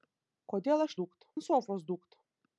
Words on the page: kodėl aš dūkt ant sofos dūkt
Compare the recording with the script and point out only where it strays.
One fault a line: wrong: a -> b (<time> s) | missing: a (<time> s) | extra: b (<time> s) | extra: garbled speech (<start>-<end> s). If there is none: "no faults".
no faults